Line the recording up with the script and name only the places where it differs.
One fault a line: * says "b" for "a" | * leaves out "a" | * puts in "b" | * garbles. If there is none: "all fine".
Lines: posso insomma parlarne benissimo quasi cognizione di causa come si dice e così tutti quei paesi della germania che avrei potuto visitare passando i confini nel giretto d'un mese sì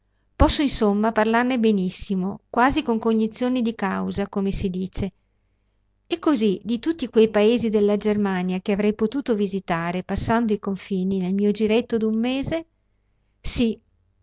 * puts in "con"
* puts in "di"
* puts in "mio"